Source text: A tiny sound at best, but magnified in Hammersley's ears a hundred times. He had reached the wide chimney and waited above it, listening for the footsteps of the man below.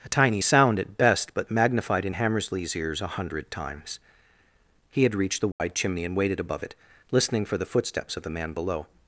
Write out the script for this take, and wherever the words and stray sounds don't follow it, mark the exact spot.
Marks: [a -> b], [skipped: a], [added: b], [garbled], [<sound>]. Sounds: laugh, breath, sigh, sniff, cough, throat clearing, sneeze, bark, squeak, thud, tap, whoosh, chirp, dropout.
A tiny sound at best, but magnified in Hammersley's ears a hundred times. He had reached the wide [dropout] chimney and waited above it, listening for the footsteps of the man below.